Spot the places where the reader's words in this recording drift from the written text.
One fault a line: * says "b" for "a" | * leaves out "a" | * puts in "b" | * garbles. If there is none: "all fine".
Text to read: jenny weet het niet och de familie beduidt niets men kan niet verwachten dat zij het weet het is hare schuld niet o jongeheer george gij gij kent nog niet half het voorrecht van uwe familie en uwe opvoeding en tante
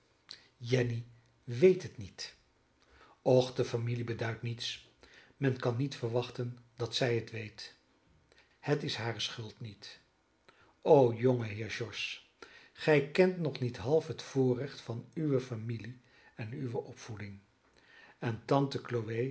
* leaves out "gij"